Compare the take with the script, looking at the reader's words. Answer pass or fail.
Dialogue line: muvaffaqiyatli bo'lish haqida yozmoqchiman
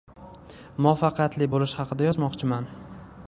pass